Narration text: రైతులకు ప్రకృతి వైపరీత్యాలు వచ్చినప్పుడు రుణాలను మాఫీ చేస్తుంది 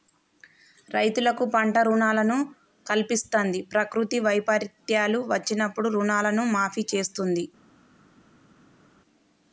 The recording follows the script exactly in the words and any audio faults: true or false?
false